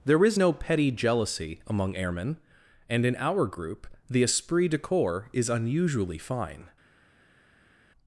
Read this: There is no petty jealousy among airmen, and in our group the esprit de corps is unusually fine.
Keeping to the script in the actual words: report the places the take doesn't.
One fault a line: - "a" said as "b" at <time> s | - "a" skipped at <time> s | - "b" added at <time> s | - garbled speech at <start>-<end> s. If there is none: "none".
none